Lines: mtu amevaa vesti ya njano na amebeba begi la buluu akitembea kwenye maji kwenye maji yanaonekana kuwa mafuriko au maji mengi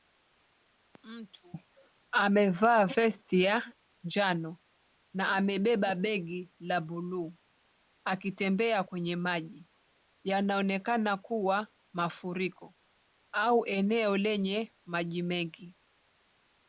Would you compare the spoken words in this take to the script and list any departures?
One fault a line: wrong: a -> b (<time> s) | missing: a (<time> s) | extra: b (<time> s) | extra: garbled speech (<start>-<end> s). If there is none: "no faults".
missing: kwenye maji (9.7 s)
extra: eneo lenye (13.7 s)